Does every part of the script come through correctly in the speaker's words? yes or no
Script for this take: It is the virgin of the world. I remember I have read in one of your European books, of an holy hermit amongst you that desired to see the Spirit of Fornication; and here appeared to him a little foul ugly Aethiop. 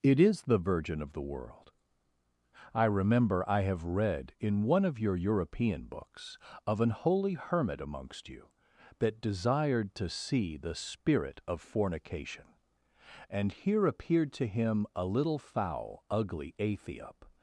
yes